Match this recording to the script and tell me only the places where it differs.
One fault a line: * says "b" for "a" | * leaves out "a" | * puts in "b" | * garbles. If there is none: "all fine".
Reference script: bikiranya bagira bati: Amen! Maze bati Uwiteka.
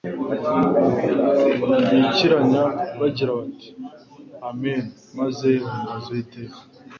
* says "bahimbaza" for "bati"